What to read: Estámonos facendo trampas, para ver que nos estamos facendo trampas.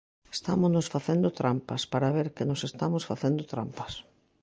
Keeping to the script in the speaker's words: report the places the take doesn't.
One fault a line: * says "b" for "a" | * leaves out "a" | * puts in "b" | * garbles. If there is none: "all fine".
all fine